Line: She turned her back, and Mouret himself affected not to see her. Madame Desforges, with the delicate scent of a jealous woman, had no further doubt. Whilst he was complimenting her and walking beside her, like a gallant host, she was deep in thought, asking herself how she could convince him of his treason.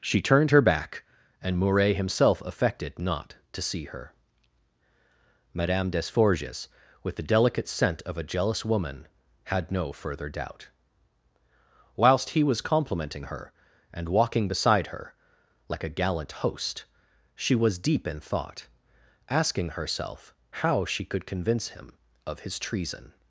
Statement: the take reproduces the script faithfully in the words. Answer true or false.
true